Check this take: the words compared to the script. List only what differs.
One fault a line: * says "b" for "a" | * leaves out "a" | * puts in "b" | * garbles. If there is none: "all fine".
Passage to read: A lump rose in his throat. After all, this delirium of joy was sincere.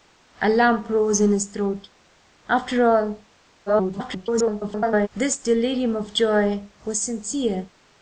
* garbles